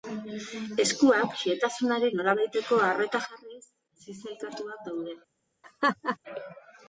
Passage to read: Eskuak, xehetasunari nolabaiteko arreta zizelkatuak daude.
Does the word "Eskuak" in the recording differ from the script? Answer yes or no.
no